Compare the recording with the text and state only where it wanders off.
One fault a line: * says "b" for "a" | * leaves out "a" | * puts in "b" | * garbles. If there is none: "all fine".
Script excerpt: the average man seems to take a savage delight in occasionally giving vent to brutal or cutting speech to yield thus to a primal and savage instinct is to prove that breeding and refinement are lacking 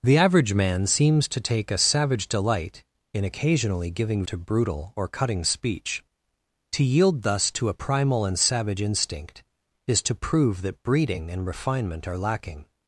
* leaves out "vent"